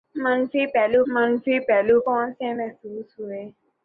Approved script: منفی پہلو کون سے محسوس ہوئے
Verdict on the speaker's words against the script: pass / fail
fail